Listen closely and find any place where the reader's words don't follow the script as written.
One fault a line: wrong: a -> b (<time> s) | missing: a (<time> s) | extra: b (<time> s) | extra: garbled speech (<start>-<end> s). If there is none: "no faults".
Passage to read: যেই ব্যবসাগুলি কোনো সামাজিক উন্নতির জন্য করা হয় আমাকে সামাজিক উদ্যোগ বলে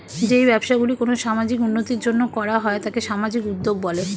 wrong: আমাকে -> তাকে (2.8 s)